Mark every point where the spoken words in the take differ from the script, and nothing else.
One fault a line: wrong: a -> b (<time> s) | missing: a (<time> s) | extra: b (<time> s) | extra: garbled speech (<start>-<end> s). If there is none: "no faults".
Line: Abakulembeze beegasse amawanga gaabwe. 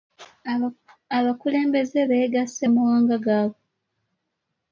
no faults